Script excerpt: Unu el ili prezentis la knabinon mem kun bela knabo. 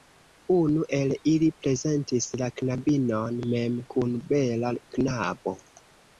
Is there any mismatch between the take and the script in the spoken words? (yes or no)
no